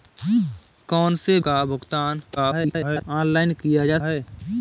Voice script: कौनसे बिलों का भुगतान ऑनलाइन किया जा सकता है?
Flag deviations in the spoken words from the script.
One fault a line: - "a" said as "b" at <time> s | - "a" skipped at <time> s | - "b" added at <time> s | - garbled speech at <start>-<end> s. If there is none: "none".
- "बिलों" skipped at 1.4 s
- garbled speech at 2.4-3.0 s
- "सकता" skipped at 4.0 s